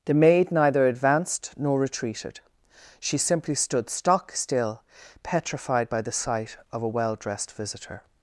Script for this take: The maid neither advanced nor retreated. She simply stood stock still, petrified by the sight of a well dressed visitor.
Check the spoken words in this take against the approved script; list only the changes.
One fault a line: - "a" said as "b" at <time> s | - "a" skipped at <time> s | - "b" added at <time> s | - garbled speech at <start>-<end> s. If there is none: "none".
none